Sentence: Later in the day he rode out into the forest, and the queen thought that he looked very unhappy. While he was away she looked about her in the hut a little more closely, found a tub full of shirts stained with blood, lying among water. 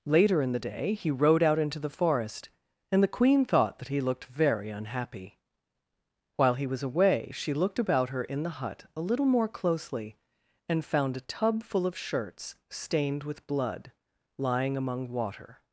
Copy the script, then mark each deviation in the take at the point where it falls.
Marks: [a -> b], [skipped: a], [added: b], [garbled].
Later in the day he rode out into the forest, and the queen thought that he looked very unhappy. While he was away she looked about her in the hut a little more closely, [added: and] found a tub full of shirts stained with blood, lying among water.